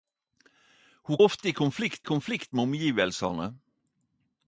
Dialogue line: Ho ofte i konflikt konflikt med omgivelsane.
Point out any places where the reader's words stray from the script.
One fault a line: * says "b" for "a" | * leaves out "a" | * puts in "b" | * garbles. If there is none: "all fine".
all fine